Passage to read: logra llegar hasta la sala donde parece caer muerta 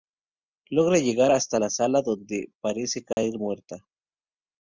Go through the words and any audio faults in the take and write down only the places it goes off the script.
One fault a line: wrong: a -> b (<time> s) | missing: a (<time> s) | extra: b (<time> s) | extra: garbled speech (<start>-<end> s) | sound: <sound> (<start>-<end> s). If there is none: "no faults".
sound: dropout (3.1-3.2 s)